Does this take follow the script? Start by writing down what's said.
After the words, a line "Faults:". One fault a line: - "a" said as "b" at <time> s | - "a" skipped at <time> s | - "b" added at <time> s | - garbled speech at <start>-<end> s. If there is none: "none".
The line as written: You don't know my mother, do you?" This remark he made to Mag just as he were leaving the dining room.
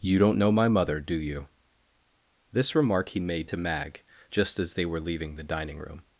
You don't know my mother, do you?" This remark he made to Mag just as they were leaving the dining room.
Faults:
- "he" said as "they" at 4.7 s